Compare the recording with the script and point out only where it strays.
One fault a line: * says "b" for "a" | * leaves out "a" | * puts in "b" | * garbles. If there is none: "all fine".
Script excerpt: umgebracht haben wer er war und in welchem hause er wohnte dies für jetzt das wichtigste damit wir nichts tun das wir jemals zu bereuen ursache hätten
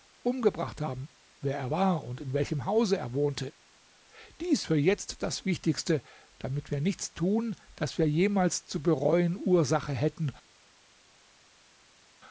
all fine